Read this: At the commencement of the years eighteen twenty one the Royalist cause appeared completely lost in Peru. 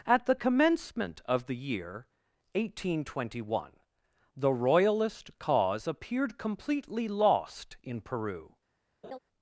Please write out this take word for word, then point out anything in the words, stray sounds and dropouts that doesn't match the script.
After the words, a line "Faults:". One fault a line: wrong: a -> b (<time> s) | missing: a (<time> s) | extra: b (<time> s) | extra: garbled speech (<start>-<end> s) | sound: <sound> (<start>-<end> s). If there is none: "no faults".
At the commencement of the year eighteen twenty one the Royalist cause appeared completely lost in Peru.
Faults:
wrong: years -> year (1.6 s)
sound: laugh (9.0-9.2 s)